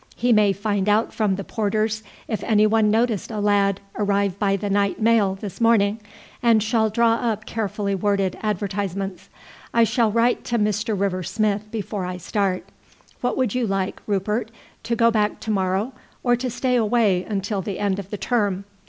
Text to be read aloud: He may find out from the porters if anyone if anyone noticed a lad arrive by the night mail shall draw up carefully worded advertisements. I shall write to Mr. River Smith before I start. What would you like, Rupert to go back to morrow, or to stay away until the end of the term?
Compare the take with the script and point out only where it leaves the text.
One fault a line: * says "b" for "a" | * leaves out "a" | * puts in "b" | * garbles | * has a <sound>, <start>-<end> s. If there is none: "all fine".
* leaves out "if anyone"
* puts in "this morning and"